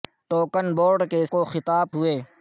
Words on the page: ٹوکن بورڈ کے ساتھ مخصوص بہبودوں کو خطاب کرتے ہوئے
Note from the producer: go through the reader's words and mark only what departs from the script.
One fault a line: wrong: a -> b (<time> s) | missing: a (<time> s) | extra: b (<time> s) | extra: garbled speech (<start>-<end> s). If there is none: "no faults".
missing: ساتھ مخصوص بہبودوں (1.2 s)
missing: کرتے (1.9 s)